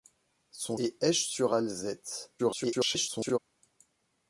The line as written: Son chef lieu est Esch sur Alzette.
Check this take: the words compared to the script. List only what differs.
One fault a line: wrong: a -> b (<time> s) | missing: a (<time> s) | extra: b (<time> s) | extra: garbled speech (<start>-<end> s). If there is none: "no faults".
missing: chef lieu (0.8 s)
extra: garbled speech (2.4-3.4 s)